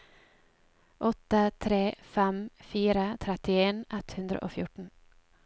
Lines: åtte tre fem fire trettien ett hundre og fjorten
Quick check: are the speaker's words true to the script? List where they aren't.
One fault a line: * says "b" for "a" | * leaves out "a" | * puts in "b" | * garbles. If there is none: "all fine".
all fine